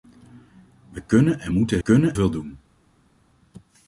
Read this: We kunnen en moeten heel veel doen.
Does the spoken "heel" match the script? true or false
false